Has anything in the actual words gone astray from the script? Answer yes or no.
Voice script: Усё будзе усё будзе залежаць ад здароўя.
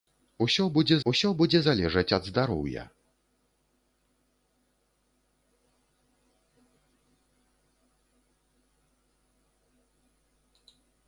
no